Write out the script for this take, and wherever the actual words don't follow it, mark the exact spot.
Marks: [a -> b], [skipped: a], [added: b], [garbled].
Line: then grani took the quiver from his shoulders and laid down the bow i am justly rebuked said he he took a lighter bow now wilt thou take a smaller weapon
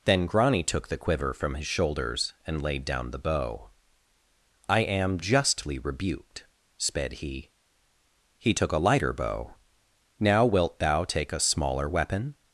then grani took the quiver from his shoulders and laid down the bow i am justly rebuked [said -> sped] he he took a lighter bow now wilt thou take a smaller weapon